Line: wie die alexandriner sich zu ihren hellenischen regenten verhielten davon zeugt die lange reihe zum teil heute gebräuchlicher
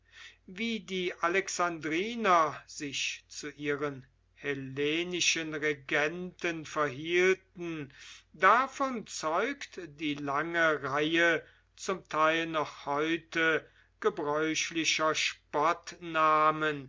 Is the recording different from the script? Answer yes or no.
yes